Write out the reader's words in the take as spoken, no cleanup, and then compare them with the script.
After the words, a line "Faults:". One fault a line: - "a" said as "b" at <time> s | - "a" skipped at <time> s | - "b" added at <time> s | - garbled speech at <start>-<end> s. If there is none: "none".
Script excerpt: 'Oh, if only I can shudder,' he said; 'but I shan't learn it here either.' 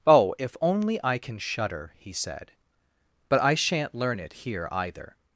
'Oh, if only I can shudder,' he said; 'but I shan't learn it here either.'
Faults:
none